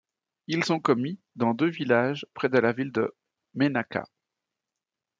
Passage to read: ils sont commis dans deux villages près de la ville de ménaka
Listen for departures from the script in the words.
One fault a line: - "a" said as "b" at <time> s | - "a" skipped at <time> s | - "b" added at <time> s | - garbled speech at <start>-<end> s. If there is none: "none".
none